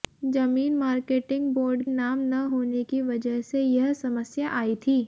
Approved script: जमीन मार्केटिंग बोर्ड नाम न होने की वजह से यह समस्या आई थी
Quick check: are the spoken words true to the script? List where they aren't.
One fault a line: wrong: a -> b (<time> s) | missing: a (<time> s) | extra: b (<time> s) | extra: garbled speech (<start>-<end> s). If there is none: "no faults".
no faults